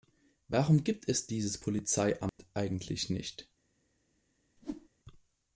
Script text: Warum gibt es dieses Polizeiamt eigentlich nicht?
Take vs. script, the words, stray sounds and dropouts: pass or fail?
fail